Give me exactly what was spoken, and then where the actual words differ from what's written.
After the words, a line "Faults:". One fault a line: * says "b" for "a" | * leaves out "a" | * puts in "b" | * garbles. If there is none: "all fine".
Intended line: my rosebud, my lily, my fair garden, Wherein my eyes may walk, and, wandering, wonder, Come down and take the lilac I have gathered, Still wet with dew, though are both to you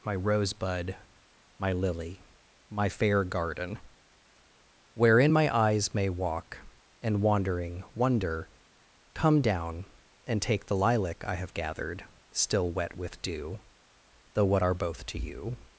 my rosebud, my lily, my fair garden, Wherein my eyes may walk, and, wandering, wonder, Come down and take the lilac I have gathered, Still wet with dew, though what are both to you
Faults:
* puts in "what"